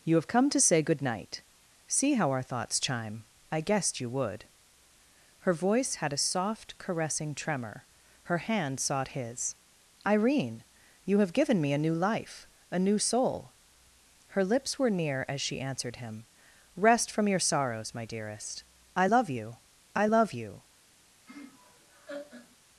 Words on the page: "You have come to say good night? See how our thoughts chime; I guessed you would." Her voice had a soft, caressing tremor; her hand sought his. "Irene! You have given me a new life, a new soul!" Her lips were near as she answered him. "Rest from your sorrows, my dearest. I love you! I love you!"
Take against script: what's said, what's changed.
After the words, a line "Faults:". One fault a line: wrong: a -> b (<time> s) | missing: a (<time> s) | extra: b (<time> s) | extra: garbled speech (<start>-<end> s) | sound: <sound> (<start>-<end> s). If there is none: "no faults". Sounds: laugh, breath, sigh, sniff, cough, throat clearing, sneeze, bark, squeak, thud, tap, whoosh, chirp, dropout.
"You have come to say good night? See how our thoughts chime; I guessed you would." Her voice had a soft, caressing tremor; her hand sought his. "Irene! You have given me a new life, a new soul!" Her lips were near as she answered him. "Rest from your sorrows, my dearest. I love you! I love you!"
Faults:
sound: laugh (21.3-22.6 s)